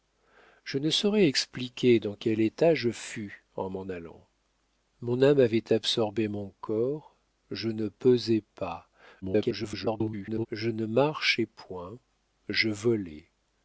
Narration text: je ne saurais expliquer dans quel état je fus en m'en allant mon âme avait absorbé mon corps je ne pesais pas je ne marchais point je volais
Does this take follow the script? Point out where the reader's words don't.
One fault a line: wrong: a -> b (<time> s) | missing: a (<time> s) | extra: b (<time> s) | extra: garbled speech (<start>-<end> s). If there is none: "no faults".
extra: garbled speech (9.2-10.5 s)